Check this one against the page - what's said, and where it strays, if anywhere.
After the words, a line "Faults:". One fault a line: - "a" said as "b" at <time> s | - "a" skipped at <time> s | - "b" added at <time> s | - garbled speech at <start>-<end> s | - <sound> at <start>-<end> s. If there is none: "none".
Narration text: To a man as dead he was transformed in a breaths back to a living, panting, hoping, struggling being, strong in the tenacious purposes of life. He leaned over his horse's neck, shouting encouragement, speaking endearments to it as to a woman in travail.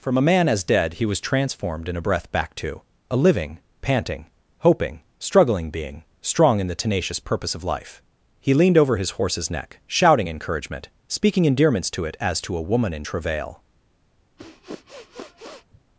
From a man as dead he was transformed in a breath back to a living, panting, hoping, struggling being, strong in the tenacious purpose of life. He leaned over his horse's neck, shouting encouragement, speaking endearments to it as to a woman in travail.
Faults:
- "To" said as "From" at 0.0 s
- "breaths" said as "breath" at 2.0 s
- "purposes" said as "purpose" at 7.2 s
- sniff at 14.4-15.8 s